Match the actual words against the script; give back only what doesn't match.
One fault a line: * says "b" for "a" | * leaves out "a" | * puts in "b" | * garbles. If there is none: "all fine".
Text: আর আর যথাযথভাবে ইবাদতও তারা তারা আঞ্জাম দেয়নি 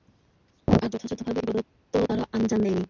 * leaves out "আর"
* leaves out "তারা"